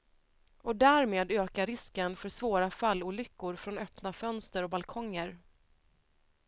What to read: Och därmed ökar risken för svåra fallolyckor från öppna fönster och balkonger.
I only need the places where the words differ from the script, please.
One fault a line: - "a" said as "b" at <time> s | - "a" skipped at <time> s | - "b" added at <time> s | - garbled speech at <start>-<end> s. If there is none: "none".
none